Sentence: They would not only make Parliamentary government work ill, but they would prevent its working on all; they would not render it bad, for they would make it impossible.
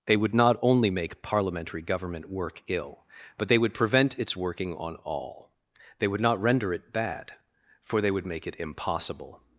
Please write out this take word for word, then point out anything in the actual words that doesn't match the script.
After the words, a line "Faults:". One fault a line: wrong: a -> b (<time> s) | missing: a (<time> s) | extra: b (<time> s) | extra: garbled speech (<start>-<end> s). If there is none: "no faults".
They would not only make Parliamentary government work ill, but they would prevent its working on all; they would not render it bad, for they would make it impossible.
Faults:
no faults